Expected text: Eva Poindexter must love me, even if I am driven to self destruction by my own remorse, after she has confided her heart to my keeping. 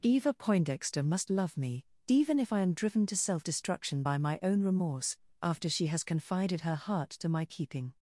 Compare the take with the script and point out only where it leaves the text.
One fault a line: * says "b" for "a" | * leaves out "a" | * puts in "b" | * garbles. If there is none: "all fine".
all fine